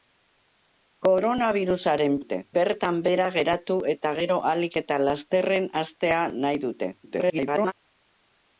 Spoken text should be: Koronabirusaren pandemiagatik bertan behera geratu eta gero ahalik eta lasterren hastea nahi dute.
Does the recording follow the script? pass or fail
fail